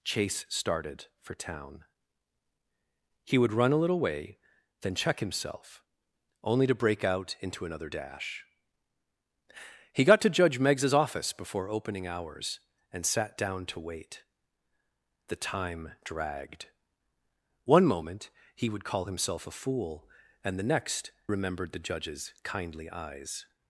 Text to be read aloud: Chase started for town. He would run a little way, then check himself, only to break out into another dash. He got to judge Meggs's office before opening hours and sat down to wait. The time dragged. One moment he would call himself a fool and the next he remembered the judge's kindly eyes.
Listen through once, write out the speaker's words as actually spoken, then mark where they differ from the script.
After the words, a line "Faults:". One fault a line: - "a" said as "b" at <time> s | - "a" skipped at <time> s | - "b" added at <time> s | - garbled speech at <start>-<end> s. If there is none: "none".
Chase started for town. He would run a little way, then check himself, only to break out into another dash. He got to judge Meggs's office before opening hours and sat down to wait. The time dragged. One moment he would call himself a fool and the next remembered the judge's kindly eyes.
Faults:
- "he" skipped at 21.1 s